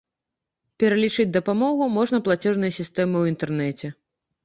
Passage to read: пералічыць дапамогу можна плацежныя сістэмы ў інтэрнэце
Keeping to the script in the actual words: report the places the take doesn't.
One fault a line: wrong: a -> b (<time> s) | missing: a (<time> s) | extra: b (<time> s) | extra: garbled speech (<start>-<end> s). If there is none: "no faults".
no faults